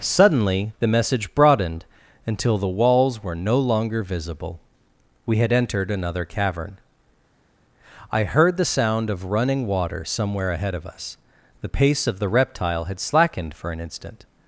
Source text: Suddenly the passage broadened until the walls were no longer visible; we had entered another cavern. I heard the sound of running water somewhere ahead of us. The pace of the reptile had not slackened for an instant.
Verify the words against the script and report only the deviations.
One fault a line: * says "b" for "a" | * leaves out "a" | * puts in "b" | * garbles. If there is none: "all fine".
* says "message" for "passage"
* leaves out "not"